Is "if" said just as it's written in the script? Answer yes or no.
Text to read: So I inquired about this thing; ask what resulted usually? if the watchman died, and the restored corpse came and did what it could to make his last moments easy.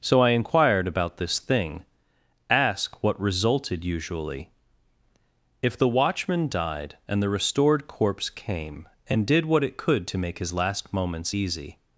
yes